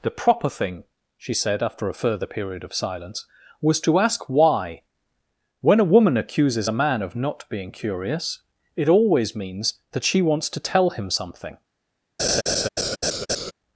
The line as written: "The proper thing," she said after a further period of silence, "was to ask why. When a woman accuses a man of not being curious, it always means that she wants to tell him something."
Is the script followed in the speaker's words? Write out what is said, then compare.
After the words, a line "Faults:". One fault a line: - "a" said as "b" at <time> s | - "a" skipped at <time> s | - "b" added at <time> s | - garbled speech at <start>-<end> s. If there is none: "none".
"The proper thing," she said after a further period of silence, "was to ask why. When a woman accuses a man of not being curious, it always means that she wants to tell him something."
Faults:
none